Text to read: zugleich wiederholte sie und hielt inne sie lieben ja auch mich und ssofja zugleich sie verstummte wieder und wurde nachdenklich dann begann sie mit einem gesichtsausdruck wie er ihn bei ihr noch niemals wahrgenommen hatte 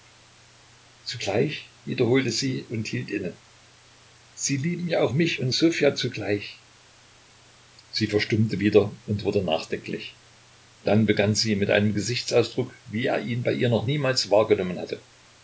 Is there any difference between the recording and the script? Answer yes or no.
no